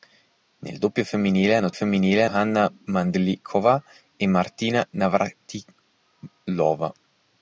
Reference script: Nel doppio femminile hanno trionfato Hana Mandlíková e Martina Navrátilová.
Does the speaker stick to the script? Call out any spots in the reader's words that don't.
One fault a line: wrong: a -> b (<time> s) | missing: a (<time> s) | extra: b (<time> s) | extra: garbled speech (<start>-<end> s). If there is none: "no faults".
wrong: trionfato -> femminile (1.7 s)